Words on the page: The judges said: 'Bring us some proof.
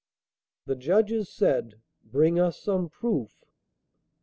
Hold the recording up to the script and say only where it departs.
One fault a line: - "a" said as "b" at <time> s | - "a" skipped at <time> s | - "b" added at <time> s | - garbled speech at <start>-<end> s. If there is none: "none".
none